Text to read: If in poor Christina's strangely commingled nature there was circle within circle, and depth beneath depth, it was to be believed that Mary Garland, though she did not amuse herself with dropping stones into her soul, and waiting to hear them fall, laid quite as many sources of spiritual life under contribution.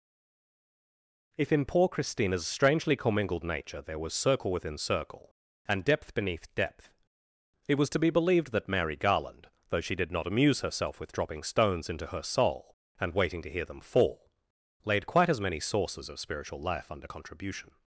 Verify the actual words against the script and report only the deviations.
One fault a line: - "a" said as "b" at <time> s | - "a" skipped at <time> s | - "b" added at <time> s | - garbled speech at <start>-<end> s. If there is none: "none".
none